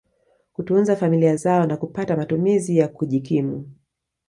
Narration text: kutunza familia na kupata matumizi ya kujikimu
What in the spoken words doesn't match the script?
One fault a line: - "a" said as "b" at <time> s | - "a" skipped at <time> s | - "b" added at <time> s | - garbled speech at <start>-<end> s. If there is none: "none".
- "zao" added at 1.3 s